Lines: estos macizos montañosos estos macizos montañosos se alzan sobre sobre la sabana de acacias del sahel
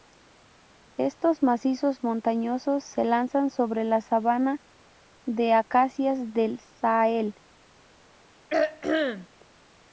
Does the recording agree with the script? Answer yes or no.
no